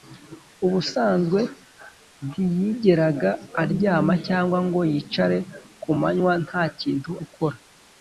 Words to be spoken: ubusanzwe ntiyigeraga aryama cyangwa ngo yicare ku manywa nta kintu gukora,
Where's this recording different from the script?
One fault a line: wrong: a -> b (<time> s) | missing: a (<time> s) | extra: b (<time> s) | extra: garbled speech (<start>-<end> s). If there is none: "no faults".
no faults